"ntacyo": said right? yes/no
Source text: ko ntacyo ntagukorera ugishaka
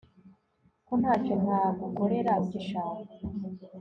yes